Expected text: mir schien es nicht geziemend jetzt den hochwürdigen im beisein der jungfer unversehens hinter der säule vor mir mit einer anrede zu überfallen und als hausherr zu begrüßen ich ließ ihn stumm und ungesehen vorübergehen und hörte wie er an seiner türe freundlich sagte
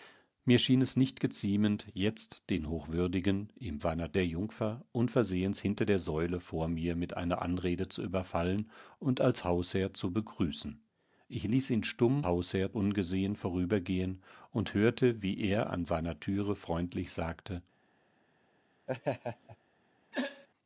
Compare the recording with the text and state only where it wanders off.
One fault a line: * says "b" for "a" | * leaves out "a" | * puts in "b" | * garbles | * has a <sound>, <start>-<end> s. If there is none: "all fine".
* says "seiner" for "beisein"
* says "hausherr" for "und"
* has a laugh, 18.9-19.6 s
* has a throat clearing, 20.1-20.5 s